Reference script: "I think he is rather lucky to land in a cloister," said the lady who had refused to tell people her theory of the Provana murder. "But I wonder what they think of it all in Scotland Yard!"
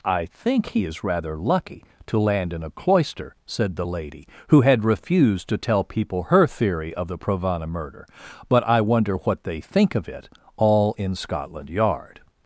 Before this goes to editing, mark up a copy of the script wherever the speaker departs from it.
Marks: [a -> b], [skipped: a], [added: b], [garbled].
"I think he is rather lucky to land in a cloister," said the lady who had refused to tell people her theory of the Provana murder. "But I wonder what they think of it all in Scotland Yard!"